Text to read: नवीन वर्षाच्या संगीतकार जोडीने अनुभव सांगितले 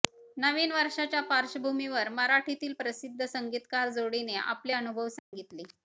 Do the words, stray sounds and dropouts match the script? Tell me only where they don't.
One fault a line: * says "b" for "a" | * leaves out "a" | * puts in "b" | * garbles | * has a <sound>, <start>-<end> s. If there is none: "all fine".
* puts in "पार्श्वभूमीवर मराठीतील प्रसिद्ध"
* puts in "आपले"
* has a dropout, 5.2-5.3 s